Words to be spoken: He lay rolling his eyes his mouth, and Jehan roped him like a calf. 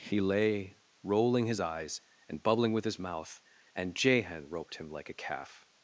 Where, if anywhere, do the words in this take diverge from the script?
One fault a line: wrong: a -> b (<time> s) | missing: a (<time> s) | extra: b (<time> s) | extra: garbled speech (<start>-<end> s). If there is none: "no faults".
extra: and bubbling with (2.3 s)